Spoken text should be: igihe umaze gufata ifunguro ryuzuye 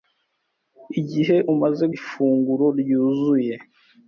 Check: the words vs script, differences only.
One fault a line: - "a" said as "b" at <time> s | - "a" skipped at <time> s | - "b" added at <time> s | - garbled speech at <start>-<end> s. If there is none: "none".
- "gufata" skipped at 1.8 s